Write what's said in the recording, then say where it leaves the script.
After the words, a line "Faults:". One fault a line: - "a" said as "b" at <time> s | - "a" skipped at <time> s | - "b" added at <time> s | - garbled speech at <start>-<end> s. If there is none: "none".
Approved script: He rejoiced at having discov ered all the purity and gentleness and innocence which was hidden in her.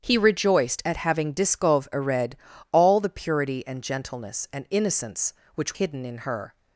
He rejoiced at having discov ered all the purity and gentleness and innocence which hidden in her.
Faults:
- "was" skipped at 5.8 s